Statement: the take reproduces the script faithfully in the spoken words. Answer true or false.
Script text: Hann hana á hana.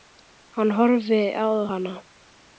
false